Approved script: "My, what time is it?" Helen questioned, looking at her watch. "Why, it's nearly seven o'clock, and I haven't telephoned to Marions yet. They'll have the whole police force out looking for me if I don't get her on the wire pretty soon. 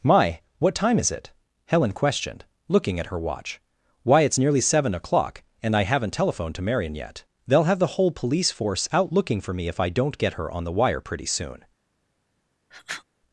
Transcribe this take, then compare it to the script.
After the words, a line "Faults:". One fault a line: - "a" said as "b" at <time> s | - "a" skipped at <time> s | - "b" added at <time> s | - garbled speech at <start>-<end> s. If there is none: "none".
"My, what time is it?" Helen questioned, looking at her watch. "Why, it's nearly seven o'clock, and I haven't telephoned to Marion yet. They'll have the whole police force out looking for me if I don't get her on the wire pretty soon.
Faults:
- "Marions" said as "Marion" at 6.6 s